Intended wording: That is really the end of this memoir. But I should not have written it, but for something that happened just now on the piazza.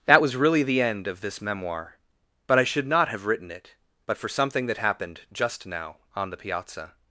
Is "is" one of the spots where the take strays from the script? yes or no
yes